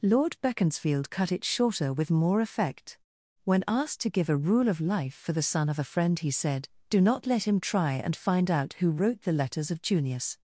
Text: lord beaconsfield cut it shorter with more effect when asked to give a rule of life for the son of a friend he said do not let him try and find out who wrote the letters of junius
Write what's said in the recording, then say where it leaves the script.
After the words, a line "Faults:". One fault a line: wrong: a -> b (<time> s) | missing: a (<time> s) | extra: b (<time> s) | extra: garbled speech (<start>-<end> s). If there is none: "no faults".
lord beaconsfield cut it shorter with more effect when asked to give a rule of life for the son of a friend he said do not let him try and find out who wrote the letters of junius
Faults:
no faults